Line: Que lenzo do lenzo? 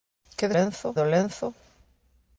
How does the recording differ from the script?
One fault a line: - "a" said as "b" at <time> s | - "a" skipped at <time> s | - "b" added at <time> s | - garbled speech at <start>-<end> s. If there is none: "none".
none